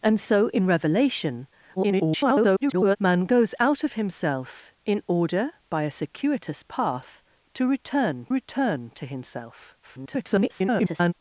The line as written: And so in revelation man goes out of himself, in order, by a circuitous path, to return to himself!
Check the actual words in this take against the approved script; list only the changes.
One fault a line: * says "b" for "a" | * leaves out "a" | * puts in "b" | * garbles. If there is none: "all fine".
* garbles
* puts in "return"
* garbles